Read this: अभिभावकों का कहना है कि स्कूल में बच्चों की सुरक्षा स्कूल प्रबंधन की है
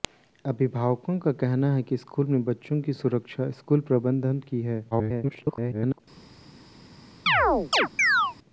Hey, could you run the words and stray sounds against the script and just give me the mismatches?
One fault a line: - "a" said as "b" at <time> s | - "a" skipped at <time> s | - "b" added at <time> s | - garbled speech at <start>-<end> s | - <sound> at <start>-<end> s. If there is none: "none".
- garbled speech at 4.9-6.0 s
- chirp at 7.3-8.4 s